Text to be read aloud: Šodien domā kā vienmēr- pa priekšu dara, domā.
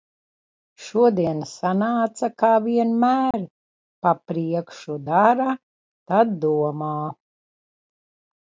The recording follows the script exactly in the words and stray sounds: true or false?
false